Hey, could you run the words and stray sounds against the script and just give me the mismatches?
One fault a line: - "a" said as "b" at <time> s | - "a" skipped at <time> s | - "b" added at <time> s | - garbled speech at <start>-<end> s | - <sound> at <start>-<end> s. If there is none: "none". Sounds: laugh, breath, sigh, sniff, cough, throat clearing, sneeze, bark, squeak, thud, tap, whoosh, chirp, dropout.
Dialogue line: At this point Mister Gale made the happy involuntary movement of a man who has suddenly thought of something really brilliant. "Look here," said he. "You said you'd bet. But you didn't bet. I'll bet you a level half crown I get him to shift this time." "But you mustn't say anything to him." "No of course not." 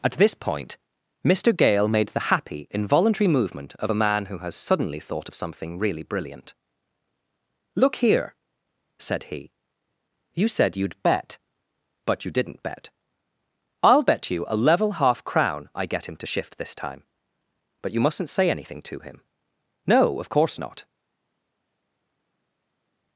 none